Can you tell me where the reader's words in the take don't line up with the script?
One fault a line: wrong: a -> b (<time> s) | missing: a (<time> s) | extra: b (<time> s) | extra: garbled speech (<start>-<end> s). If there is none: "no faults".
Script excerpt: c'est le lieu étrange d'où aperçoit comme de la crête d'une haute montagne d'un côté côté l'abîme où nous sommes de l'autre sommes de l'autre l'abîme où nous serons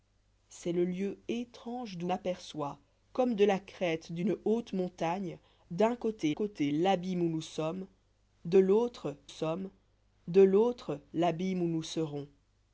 no faults